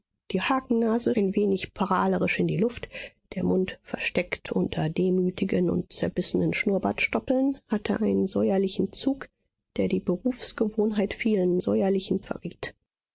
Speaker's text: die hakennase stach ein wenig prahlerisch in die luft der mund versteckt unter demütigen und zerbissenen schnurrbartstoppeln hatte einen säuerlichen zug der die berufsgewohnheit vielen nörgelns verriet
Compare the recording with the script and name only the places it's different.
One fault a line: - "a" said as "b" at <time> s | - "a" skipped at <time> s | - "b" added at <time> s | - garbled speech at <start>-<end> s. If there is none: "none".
- "stach" skipped at 1.1 s
- "nörgelns" said as "säuerlichen" at 11.6 s